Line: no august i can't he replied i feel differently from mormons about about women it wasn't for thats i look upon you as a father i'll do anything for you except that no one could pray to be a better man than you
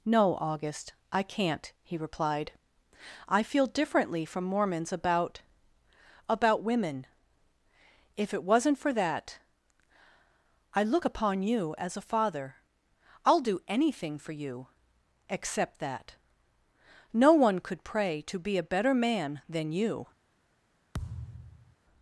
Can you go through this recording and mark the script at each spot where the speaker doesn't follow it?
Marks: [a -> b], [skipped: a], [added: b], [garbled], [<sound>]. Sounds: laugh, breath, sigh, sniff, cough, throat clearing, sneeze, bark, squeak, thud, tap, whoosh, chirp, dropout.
no august i can't he replied i feel differently from mormons about about women [added: if] it wasn't for [thats -> that] i look upon you as a father i'll do anything for you except that no one could pray to be a better man than you [thud]